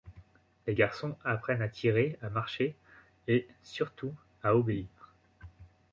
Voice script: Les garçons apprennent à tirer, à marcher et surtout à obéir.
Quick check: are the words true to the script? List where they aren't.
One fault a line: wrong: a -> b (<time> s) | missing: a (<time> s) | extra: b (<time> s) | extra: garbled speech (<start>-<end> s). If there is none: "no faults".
no faults